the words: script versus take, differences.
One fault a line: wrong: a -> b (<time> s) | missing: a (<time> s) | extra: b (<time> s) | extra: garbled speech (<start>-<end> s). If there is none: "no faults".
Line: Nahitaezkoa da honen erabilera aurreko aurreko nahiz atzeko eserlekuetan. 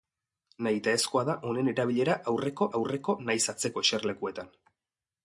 no faults